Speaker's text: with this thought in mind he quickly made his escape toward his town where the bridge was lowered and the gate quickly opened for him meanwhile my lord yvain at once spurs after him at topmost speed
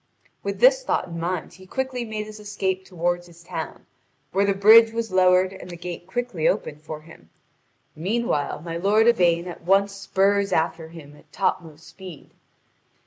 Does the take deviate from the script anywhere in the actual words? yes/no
no